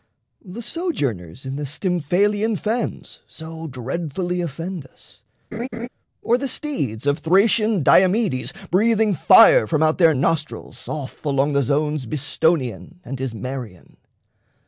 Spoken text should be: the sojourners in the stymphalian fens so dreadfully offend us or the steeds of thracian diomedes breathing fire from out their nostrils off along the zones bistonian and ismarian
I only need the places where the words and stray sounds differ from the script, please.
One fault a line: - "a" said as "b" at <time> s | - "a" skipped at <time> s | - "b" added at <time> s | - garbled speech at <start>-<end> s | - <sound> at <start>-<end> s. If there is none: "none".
- laugh at 5.5-5.9 s